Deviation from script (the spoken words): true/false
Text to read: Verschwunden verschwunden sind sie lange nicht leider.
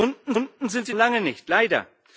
false